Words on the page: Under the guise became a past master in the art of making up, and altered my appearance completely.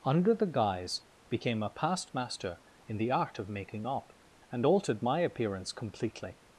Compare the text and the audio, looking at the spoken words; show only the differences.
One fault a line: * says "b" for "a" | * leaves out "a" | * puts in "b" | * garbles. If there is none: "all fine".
all fine